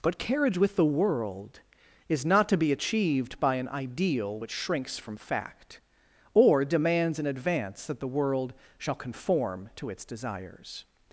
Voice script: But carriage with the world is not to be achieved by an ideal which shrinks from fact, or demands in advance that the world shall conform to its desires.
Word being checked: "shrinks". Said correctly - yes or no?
yes